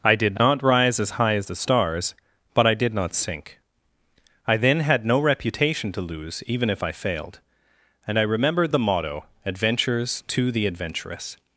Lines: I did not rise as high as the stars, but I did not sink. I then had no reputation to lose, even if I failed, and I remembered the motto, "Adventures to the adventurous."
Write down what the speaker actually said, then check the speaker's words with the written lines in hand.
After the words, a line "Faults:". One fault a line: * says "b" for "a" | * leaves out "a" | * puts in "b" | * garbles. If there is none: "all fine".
I did not rise as high as the stars, but I did not sink. I then had no reputation to lose, even if I failed, and I remembered the motto, "Adventures to the adventurous."
Faults:
all fine